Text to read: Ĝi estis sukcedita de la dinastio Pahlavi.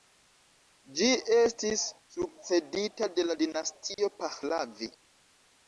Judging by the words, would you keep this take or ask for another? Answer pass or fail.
pass